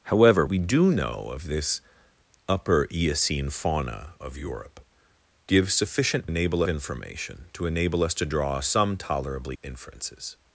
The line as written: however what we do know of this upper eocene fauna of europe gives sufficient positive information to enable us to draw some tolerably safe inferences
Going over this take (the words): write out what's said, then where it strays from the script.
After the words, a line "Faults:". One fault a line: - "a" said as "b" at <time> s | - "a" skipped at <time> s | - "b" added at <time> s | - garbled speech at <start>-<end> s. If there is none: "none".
however we do know of this upper eocene fauna of europe gives sufficient enable information to enable us to draw some tolerably inferences
Faults:
- "what" skipped at 0.5 s
- "positive" said as "enable" at 6.3 s
- "safe" skipped at 9.6 s